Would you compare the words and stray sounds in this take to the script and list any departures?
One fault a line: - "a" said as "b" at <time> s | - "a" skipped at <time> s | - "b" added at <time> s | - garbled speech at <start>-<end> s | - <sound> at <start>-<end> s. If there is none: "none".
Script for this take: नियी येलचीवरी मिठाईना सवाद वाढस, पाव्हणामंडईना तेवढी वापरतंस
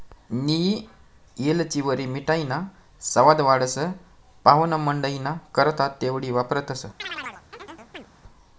- "करता" added at 5.5 s
- chirp at 7.0-8.1 s